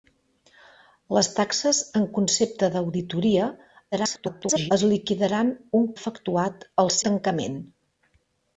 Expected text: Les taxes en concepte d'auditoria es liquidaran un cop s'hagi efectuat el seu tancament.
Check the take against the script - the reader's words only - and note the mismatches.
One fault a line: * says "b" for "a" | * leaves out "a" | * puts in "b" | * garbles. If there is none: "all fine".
* garbles
* leaves out "cop s'hagi"
* leaves out "seu"